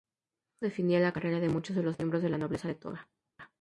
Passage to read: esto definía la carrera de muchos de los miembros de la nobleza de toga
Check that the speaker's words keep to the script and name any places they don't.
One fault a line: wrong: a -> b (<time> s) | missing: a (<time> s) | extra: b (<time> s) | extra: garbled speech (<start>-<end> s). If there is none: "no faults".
no faults